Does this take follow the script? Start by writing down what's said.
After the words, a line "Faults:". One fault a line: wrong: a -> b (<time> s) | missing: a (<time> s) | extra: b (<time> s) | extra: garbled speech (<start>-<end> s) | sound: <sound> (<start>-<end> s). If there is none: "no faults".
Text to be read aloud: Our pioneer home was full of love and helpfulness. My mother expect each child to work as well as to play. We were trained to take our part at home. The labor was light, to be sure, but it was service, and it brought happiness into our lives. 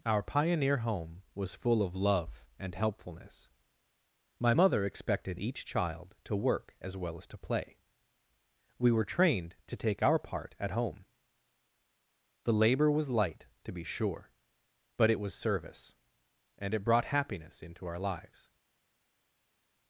Our pioneer home was full of love and helpfulness. My mother expected each child to work as well as to play. We were trained to take our part at home. The labor was light, to be sure, but it was service, and it brought happiness into our lives.
Faults:
wrong: expect -> expected (4.8 s)